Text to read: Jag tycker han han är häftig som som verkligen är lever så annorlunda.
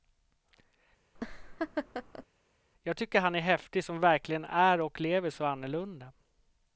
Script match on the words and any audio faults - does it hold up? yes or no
no